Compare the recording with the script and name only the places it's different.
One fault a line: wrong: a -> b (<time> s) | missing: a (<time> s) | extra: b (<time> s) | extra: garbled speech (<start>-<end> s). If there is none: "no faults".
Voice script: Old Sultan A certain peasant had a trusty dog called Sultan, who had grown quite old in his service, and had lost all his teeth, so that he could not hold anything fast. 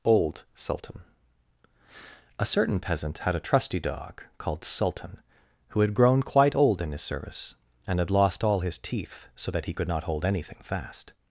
no faults